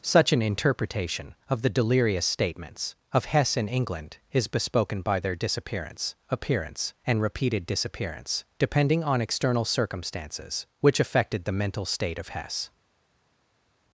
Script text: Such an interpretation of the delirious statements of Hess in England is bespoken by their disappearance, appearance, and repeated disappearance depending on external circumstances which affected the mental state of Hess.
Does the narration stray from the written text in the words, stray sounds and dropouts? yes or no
no